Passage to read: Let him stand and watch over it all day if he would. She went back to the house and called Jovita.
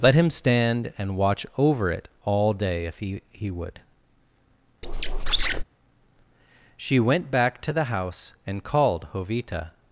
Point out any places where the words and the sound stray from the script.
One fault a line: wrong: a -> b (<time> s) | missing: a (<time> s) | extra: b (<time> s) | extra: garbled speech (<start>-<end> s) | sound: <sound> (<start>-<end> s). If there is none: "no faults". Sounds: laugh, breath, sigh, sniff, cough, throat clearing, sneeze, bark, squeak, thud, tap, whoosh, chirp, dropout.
extra: he (3.3 s)
sound: squeak (4.8-5.6 s)